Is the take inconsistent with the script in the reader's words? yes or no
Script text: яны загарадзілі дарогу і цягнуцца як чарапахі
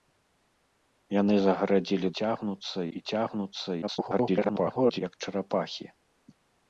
yes